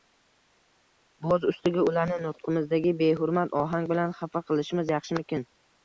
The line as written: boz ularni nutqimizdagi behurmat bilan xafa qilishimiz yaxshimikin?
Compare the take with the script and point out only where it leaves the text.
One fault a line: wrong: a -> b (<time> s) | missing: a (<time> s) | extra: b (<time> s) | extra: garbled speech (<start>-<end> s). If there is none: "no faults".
extra: ustiga (1.5 s)
extra: ohang (3.7 s)